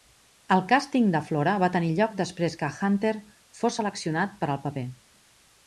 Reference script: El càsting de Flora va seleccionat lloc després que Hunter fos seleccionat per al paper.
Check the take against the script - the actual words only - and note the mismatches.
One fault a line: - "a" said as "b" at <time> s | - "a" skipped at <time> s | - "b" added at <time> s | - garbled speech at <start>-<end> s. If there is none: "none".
- "seleccionat" said as "tenir" at 1.8 s